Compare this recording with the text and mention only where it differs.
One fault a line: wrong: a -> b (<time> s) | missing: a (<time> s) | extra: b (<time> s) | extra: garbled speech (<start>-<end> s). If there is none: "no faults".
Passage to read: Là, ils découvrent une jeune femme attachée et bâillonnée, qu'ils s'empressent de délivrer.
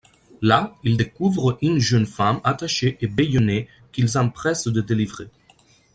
no faults